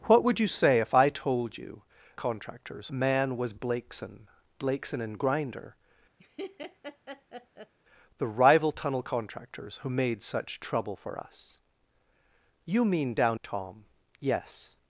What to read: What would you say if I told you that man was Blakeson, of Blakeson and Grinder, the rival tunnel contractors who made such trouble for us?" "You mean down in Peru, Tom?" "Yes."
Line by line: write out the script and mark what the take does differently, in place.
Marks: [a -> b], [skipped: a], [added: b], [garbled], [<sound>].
What would you say if I told you [that -> contractors] man was Blakeson, [skipped: of] Blakeson and Grinder, [laugh] the rival tunnel contractors who made such trouble for us?" "You mean down [skipped: in Peru,] Tom?" "Yes."